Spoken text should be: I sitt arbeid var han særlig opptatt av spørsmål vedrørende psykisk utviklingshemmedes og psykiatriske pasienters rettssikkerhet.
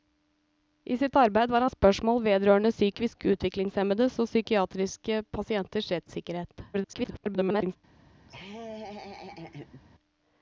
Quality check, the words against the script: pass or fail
fail